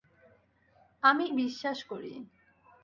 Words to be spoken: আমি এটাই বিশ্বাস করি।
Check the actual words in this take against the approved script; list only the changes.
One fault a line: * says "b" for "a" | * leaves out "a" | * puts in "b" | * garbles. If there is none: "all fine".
* leaves out "এটাই"